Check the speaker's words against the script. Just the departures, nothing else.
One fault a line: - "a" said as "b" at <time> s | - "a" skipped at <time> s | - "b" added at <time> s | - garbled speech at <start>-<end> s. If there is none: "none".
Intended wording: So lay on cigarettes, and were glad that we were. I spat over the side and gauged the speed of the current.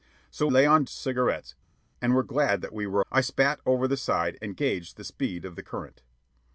none